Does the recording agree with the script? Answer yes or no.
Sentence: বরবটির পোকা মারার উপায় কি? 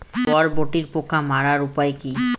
yes